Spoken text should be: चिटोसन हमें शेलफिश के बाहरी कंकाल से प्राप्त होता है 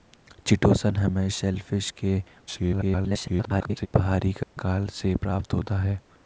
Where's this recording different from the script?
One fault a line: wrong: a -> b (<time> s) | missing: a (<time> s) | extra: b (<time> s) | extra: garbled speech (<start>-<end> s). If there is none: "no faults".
extra: garbled speech (2.5-3.9 s)